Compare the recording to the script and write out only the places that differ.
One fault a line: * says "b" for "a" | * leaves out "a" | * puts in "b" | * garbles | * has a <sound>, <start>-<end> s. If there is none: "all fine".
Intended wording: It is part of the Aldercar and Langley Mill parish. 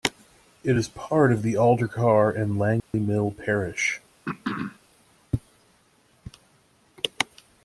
* has a dropout, 2.8-2.9 s
* has a throat clearing, 4.2-4.8 s